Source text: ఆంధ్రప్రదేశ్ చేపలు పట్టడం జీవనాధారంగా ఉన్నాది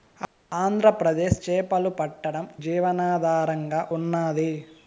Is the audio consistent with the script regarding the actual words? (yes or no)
yes